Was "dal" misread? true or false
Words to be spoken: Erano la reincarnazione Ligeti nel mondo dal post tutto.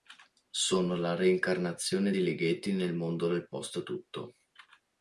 true